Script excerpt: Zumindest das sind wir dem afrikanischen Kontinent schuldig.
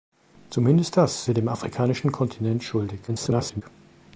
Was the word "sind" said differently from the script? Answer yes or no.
yes